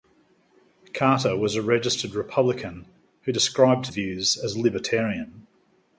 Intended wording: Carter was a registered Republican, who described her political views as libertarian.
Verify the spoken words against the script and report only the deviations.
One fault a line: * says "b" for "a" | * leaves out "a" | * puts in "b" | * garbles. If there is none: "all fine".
* leaves out "her political"